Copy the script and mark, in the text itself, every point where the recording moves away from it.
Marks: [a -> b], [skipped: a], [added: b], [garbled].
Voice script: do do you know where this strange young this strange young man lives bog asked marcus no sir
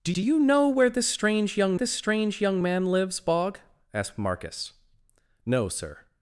do do you know where this strange young this strange young man lives bog asked marcus no sir